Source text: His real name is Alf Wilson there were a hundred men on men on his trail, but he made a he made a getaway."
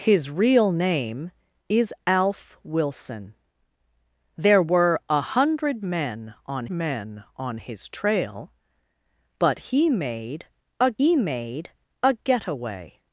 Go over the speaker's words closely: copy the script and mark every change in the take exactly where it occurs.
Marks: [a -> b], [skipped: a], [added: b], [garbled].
His real name is Alf Wilson there were a hundred men on men on his trail, but he made a he made a getaway."